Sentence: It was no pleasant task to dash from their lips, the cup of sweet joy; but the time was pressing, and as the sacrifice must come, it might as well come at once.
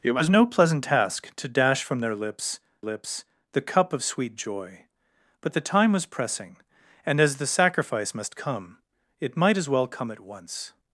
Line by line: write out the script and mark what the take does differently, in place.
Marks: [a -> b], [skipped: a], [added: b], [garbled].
It was no pleasant task to dash from their lips, [added: lips] the cup of sweet joy; but the time was pressing, and as the sacrifice must come, it might as well come at once.